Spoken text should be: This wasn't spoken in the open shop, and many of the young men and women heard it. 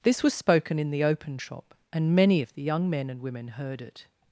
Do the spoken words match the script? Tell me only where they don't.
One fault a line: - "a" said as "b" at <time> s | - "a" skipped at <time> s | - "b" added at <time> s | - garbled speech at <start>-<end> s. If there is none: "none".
- "wasn't" said as "was" at 0.2 s